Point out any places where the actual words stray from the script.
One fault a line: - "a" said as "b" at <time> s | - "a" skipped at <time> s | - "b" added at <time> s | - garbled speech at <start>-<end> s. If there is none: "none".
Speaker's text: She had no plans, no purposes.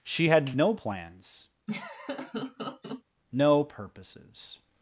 none